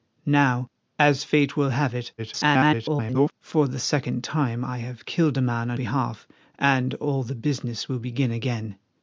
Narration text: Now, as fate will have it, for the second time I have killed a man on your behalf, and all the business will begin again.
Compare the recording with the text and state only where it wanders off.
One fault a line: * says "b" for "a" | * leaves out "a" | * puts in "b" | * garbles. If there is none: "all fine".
* garbles
* leaves out "your"